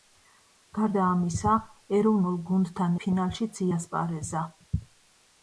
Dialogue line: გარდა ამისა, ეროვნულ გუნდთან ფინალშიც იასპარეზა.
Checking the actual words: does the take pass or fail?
pass